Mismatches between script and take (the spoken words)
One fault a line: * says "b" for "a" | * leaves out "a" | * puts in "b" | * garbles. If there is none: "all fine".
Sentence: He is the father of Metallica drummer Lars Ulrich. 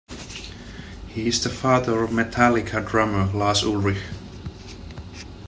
all fine